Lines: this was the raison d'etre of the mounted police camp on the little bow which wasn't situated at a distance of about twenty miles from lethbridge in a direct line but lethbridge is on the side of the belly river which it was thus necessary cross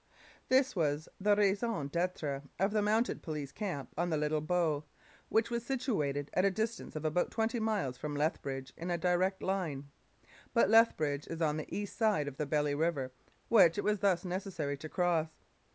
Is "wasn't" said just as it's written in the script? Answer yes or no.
no